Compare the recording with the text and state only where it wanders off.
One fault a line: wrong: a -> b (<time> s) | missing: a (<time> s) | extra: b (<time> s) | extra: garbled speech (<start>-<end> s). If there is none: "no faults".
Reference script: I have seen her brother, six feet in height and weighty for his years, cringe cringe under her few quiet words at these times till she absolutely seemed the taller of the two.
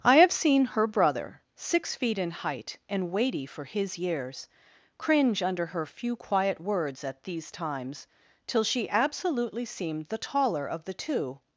missing: cringe (5.4 s)